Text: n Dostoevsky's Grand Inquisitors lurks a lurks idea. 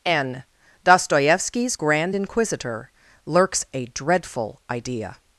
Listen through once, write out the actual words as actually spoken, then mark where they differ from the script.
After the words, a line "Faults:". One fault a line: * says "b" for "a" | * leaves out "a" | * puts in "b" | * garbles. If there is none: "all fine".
n Dostoevsky's Grand Inquisitor lurks a dreadful idea.
Faults:
* says "Inquisitor" for "Inquisitors"
* says "dreadful" for "lurks"